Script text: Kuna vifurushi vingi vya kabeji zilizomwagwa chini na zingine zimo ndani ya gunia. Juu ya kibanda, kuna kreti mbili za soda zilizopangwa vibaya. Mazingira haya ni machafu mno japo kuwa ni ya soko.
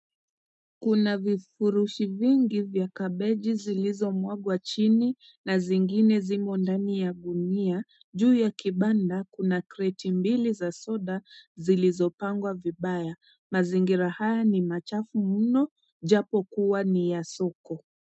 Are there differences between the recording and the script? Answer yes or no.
no